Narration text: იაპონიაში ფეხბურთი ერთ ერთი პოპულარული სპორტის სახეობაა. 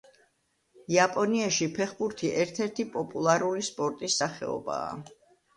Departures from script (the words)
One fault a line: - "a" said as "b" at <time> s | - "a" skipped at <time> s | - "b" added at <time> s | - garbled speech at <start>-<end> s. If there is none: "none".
none